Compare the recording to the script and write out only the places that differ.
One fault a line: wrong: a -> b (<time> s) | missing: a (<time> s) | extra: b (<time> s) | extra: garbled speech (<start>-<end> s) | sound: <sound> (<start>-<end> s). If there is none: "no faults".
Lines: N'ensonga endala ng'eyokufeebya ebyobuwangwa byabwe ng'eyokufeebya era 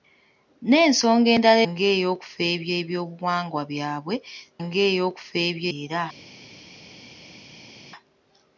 no faults